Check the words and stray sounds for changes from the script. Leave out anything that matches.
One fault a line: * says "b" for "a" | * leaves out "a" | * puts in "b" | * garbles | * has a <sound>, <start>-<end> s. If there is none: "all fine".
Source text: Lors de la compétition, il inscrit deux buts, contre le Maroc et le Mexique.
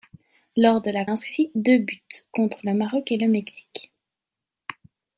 * leaves out "compétition il"